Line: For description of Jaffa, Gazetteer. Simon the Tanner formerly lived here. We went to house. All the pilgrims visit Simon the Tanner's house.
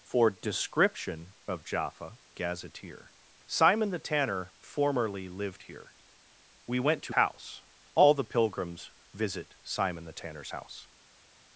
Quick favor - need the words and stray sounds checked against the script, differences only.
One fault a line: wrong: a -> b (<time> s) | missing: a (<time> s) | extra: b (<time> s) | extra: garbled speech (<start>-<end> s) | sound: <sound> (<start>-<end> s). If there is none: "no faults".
no faults